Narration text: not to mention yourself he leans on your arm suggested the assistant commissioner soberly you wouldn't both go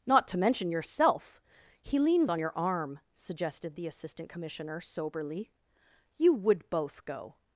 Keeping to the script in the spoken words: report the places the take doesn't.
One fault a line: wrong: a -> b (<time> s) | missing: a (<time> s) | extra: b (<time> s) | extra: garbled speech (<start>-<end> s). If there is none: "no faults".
wrong: wouldn't -> would (6.3 s)